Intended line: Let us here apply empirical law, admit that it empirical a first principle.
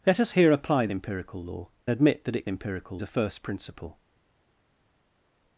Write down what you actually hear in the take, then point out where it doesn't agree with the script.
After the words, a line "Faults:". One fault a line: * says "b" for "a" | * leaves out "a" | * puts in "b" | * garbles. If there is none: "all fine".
Let us here apply empirical law, admit that it empirical a first principle.
Faults:
all fine